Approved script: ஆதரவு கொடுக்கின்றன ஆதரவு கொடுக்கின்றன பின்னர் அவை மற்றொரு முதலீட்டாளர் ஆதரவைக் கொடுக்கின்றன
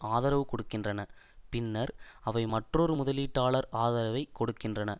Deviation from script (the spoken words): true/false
true